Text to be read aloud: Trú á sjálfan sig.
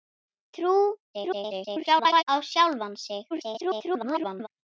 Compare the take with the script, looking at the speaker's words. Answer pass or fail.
fail